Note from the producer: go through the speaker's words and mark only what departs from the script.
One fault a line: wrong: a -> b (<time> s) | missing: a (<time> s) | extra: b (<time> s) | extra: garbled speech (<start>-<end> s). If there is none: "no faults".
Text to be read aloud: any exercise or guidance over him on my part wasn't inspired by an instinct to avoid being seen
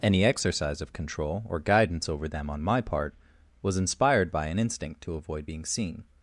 extra: of control (0.8 s)
wrong: him -> them (2.3 s)
wrong: wasn't -> was (3.6 s)